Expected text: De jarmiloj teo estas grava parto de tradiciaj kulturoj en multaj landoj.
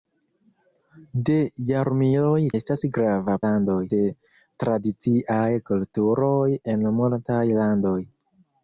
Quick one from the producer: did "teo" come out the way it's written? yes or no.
no